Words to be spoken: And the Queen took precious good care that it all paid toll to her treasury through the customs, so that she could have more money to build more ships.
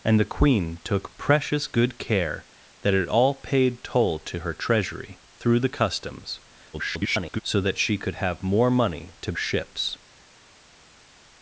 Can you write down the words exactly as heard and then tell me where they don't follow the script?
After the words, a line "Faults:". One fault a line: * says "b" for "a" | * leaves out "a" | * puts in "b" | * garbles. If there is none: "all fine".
And the Queen took precious good care that it all paid toll to her treasury through the customs, [garbled] so that she could have more money to ships.
Faults:
* garbles
* leaves out "build more"